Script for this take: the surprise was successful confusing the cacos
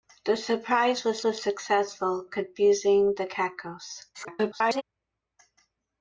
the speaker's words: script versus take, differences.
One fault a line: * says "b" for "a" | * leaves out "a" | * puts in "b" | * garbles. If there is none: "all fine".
* puts in "was"
* garbles